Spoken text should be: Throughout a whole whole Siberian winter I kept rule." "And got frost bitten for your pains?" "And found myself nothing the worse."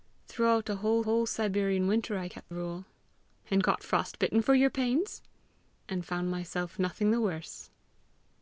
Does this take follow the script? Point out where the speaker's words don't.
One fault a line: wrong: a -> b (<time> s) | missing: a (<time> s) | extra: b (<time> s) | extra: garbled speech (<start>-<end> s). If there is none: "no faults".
no faults